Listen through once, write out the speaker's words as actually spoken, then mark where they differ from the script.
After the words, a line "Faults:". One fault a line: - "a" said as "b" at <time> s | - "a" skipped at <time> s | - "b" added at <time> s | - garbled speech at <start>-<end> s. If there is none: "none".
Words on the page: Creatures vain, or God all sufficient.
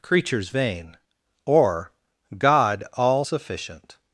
Creatures vain, or God all sufficient.
Faults:
none